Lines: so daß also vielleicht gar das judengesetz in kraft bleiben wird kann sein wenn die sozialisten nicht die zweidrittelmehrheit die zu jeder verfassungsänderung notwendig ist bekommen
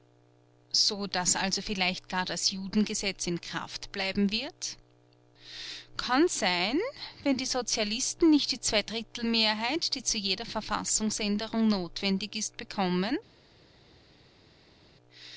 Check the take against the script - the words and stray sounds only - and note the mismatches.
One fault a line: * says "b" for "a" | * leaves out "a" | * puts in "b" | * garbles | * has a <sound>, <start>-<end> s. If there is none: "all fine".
all fine